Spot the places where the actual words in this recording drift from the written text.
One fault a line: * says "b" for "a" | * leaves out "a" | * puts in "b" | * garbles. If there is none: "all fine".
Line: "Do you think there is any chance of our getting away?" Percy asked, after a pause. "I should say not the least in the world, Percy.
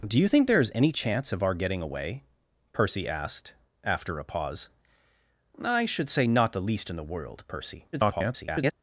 * garbles